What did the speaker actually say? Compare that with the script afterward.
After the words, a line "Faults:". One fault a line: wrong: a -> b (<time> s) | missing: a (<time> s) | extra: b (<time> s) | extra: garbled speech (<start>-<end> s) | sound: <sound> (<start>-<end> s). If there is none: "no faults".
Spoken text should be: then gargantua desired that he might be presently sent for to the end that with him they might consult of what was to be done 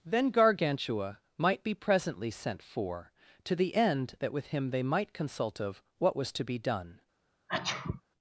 then gargantua might be presently sent for to the end that with him they might consult of what was to be done
Faults:
missing: desired that he (1.2 s)
sound: sneeze (7.5-8.0 s)